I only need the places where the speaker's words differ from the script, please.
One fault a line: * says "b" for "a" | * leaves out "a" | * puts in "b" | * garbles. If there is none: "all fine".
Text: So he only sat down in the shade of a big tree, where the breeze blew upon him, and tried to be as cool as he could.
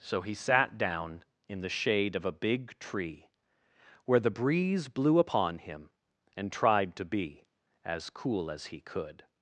* leaves out "only"